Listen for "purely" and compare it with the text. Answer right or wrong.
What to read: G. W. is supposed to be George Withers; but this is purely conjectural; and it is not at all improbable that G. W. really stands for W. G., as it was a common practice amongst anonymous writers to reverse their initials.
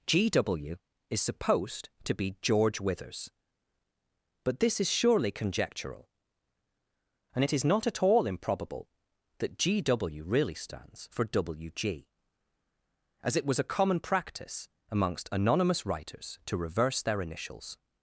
wrong